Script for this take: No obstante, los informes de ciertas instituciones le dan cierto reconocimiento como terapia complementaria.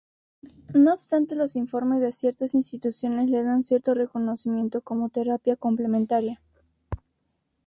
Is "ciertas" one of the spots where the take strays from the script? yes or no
no